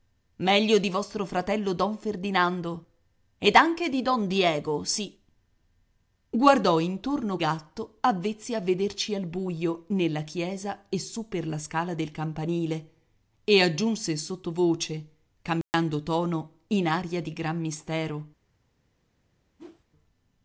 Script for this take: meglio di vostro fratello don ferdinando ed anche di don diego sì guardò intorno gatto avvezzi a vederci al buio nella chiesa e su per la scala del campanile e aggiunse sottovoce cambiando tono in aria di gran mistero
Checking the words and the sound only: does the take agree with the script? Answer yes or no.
no